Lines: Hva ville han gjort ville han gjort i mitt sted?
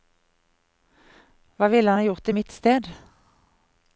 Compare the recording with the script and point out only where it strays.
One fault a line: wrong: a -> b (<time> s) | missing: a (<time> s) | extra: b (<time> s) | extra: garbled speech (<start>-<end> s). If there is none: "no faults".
missing: ville han gjort (2.3 s)